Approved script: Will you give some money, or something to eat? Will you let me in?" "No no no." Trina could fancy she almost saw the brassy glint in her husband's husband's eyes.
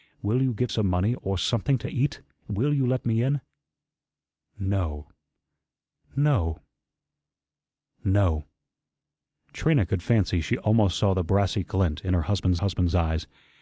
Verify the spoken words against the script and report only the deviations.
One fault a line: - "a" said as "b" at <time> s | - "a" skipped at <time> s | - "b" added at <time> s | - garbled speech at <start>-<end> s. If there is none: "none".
none